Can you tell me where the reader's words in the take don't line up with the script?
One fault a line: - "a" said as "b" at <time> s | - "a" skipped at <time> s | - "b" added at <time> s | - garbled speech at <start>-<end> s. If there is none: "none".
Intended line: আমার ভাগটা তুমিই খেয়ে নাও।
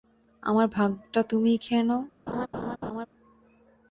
none